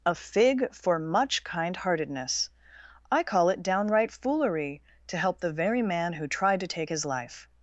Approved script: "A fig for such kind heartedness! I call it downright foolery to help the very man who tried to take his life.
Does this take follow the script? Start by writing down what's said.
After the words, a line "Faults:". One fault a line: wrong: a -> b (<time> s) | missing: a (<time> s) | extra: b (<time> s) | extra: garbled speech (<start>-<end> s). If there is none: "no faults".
"A fig for much kind heartedness! I call it downright foolery to help the very man who tried to take his life.
Faults:
wrong: such -> much (1.0 s)